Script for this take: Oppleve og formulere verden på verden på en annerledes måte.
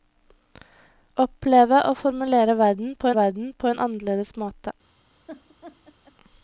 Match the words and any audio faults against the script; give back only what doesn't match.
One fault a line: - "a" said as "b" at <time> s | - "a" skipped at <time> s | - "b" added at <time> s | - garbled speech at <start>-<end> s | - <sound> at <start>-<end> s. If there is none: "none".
- laugh at 5.3-6.2 s